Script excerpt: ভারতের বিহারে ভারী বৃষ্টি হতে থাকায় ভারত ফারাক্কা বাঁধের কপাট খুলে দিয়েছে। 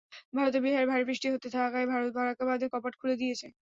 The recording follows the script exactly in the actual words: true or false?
true